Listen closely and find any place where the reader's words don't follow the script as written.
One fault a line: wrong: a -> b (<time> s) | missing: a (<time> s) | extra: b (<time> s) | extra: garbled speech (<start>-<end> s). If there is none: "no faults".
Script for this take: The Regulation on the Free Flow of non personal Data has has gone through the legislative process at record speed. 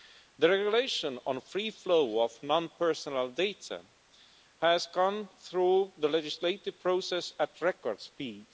missing: has (4.9 s)